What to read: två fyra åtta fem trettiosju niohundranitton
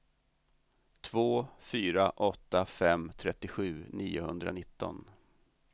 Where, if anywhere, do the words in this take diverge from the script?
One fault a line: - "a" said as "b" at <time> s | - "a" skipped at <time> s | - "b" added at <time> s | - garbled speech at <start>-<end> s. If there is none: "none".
none